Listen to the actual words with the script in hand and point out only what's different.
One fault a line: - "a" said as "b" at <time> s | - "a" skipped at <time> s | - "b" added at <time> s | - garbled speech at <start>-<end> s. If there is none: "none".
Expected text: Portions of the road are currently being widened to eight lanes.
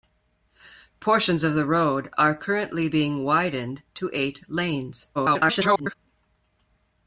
- garbled speech at 5.1-5.9 s